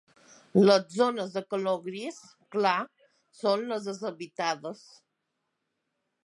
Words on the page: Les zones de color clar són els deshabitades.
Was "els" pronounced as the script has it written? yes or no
no